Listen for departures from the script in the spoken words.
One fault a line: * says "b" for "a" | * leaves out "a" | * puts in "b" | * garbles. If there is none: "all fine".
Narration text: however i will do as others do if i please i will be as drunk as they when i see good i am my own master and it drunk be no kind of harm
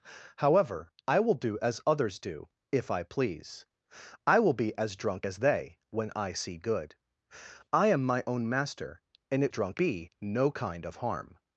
all fine